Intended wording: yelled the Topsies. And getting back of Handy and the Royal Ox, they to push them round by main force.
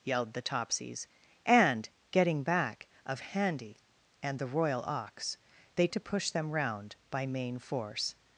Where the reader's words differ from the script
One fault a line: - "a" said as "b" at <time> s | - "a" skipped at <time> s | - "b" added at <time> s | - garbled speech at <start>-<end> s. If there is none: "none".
none